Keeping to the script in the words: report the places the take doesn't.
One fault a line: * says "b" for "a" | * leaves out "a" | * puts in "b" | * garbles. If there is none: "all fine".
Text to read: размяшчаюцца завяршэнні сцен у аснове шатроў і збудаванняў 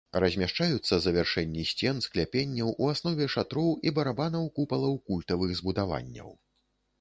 * puts in "скляпенняў"
* puts in "барабанаў купалаў культавых"